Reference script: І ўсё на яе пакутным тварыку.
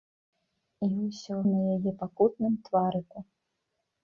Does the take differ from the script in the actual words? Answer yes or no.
no